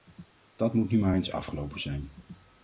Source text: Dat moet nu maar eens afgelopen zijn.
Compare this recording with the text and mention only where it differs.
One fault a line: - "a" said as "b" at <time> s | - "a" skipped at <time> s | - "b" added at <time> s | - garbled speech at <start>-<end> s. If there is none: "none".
none